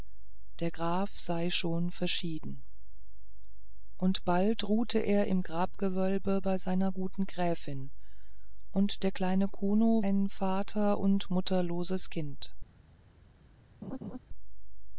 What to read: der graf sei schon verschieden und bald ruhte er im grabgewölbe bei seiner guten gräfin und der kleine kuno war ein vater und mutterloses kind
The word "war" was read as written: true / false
false